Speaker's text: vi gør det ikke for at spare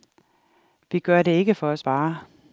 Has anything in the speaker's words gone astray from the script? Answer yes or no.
no